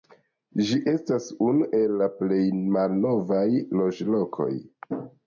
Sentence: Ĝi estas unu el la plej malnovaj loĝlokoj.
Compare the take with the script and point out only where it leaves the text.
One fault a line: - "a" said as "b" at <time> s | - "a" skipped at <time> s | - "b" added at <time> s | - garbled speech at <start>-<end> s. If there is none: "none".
none